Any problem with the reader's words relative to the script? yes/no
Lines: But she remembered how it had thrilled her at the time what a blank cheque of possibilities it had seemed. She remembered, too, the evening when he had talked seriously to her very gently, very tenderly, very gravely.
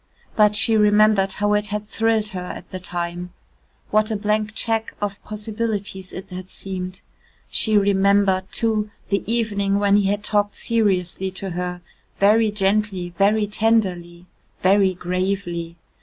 no